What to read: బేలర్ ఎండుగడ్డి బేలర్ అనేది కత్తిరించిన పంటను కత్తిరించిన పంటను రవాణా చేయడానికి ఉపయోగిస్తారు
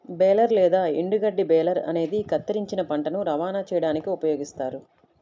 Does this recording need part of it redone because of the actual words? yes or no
yes